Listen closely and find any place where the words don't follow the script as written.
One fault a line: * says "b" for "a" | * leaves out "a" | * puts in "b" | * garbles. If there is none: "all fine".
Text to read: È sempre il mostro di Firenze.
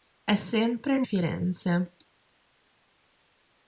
* leaves out "mostro di"